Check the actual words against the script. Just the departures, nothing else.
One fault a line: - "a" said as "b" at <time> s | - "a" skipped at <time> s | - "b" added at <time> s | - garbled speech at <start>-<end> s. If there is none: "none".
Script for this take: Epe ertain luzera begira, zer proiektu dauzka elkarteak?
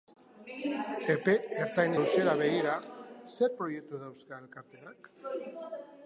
none